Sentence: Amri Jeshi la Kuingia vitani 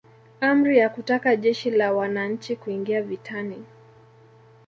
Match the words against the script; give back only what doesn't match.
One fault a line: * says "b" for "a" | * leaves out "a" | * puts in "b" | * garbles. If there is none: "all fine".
* puts in "ya kutaka"
* puts in "Wananchi"